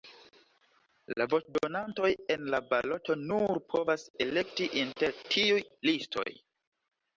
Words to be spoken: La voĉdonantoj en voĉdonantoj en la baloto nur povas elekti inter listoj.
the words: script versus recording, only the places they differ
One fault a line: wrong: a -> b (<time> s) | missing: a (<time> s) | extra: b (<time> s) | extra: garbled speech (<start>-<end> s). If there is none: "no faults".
missing: voĉdonantoj en (2.5 s)
extra: tiuj (5.4 s)